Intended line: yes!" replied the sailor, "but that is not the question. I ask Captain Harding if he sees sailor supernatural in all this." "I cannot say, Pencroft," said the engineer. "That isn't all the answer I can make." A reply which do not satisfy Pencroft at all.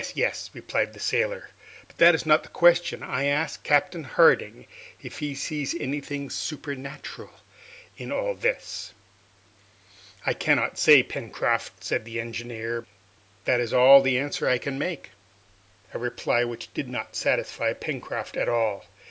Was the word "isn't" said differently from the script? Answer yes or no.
yes